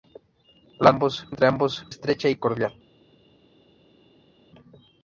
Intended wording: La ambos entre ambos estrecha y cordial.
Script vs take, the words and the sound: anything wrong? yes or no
no